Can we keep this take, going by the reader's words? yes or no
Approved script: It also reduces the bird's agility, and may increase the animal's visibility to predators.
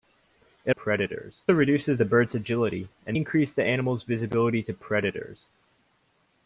no